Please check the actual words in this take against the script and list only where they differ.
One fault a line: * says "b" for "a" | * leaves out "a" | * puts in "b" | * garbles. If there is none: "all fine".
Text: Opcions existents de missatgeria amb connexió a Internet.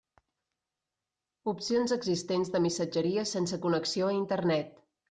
* says "sense" for "amb"